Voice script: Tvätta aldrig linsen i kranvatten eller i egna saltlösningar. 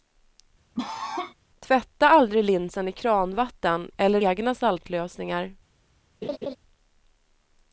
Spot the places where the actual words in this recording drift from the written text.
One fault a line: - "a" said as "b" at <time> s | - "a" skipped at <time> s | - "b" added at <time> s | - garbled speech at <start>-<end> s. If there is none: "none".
- "i" skipped at 4.2 s